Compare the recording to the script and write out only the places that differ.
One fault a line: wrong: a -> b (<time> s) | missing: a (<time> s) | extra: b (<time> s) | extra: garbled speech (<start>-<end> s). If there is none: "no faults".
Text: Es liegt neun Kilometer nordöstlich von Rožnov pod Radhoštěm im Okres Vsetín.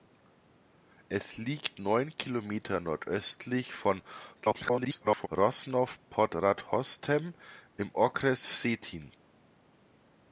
extra: garbled speech (4.4-5.3 s)